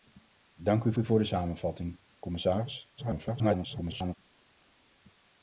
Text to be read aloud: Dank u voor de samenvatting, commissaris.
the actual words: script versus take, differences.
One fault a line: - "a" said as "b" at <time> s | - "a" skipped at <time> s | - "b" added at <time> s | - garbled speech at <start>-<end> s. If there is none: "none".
- "u" added at 0.9 s
- garbled speech at 3.0-4.2 s